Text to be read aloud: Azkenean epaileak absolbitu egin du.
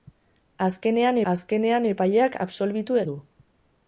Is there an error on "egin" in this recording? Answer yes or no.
yes